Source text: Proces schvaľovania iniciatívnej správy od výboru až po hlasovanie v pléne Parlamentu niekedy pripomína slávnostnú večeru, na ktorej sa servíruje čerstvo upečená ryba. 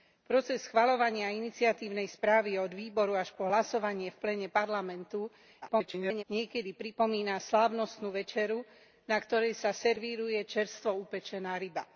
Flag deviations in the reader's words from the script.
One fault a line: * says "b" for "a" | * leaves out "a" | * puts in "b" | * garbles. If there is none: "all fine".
* garbles